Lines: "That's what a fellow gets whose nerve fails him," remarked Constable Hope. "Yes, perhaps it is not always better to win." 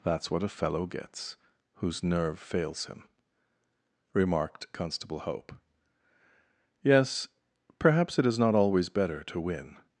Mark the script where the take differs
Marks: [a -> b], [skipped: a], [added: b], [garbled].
"That's what a fellow gets whose nerve fails him," remarked Constable Hope. "Yes, perhaps it is not always better to win."